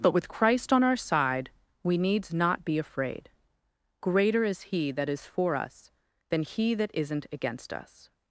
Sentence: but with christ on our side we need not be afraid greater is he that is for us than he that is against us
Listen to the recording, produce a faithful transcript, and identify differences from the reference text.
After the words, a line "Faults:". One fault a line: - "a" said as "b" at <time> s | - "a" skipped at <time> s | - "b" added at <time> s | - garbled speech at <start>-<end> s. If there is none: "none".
but with christ on our side we needs not be afraid greater is he that is for us than he that isn't against us
Faults:
- "need" said as "needs" at 2.0 s
- "is" said as "isn't" at 7.0 s